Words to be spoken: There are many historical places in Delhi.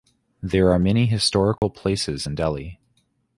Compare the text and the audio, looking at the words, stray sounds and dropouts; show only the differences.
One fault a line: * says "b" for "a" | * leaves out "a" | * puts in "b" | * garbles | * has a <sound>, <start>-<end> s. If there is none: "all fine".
* has a dropout, 1.6-1.6 s